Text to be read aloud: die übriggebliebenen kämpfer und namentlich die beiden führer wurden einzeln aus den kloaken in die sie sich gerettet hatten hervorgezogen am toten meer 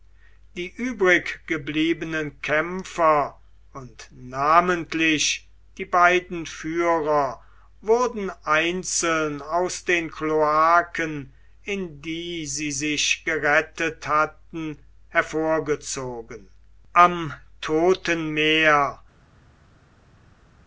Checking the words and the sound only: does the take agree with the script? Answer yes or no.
yes